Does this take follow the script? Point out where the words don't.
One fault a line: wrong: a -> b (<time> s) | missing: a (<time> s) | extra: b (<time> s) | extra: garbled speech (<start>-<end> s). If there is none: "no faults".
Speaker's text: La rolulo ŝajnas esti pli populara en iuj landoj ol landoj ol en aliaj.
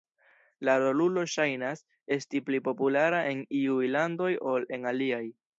missing: landoj ol (4.7 s)